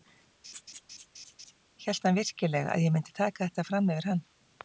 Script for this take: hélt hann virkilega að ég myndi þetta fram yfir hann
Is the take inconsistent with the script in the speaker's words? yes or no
yes